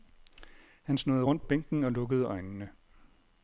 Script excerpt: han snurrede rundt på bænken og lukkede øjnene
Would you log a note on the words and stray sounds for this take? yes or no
yes